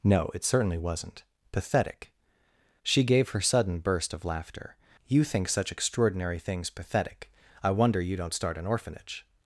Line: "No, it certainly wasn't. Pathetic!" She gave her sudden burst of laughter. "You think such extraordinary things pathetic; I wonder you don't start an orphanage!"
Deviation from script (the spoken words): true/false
false